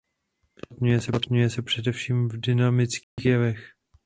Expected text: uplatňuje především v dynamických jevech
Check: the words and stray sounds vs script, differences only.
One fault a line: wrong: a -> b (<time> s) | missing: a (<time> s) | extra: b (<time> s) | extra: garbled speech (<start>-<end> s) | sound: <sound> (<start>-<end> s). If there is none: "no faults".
extra: se (1.5 s)
sound: dropout (3.0-3.2 s)